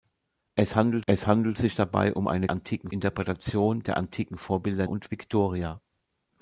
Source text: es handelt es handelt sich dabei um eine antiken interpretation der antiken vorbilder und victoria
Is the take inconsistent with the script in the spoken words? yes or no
no